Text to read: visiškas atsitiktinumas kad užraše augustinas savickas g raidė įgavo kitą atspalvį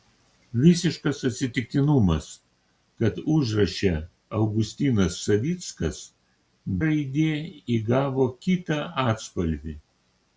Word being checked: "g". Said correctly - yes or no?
no